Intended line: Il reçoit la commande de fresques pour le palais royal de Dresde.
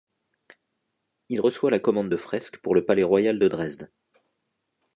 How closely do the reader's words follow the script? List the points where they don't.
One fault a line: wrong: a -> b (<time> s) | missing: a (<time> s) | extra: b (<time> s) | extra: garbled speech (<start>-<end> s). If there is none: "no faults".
no faults